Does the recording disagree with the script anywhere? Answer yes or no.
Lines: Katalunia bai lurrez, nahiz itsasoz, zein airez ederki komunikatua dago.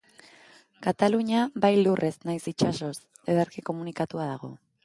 yes